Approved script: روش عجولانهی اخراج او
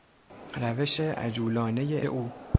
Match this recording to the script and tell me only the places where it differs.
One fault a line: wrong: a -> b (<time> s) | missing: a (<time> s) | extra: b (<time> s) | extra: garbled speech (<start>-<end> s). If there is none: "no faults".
missing: اخراج (2.0 s)